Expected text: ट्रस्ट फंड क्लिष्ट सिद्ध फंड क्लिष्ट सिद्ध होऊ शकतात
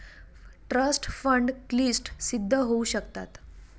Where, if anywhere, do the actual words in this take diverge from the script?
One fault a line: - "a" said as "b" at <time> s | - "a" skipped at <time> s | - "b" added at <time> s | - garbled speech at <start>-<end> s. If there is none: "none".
- "फंड क्लिष्ट सिद्ध" skipped at 2.5 s